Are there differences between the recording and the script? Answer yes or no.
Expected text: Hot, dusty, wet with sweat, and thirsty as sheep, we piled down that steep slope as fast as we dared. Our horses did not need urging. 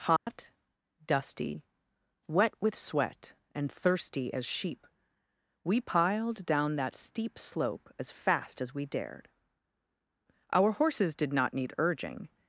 no